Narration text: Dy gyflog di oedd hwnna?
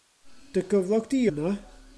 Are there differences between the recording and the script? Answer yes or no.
yes